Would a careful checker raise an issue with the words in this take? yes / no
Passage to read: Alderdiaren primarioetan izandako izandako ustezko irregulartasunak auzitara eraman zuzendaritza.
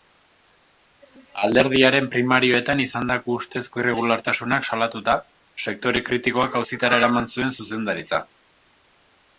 yes